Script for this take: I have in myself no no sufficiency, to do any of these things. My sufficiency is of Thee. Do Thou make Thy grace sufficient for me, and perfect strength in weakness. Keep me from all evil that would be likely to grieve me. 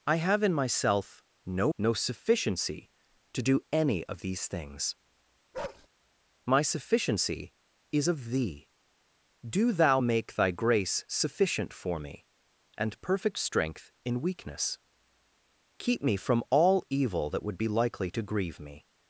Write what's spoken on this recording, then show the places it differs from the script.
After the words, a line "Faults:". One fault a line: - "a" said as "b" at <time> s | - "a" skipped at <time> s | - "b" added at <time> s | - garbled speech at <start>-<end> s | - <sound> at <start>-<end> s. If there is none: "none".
I have in myself no no sufficiency, to do any of these things. My sufficiency is of Thee. Do Thou make Thy grace sufficient for me, and perfect strength in weakness. Keep me from all evil that would be likely to grieve me.
Faults:
- bark at 5.5-5.9 s